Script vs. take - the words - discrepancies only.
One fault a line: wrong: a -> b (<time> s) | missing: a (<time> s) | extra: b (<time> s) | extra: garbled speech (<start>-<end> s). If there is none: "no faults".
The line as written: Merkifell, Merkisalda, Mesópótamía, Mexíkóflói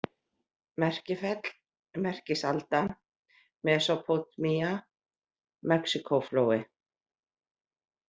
no faults